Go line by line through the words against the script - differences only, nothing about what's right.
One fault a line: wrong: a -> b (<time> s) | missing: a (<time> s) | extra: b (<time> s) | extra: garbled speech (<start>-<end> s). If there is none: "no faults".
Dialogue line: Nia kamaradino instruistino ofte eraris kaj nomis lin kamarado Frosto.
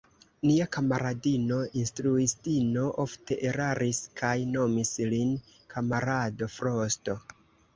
no faults